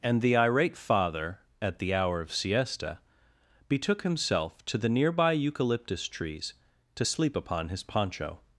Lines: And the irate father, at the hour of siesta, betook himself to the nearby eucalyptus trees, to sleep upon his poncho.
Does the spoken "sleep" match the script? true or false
true